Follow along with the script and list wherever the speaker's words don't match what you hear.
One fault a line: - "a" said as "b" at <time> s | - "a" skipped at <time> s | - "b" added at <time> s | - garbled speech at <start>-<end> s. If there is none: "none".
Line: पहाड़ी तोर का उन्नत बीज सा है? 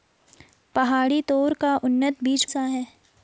none